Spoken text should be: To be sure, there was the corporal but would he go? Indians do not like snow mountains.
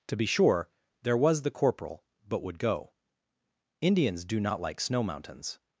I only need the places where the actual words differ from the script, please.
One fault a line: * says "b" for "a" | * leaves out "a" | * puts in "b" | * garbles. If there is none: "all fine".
* leaves out "he"